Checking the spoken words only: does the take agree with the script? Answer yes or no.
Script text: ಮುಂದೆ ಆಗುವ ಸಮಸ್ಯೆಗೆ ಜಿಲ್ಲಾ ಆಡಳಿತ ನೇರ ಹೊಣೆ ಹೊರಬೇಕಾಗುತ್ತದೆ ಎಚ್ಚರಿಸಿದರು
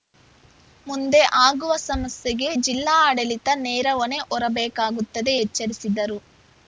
yes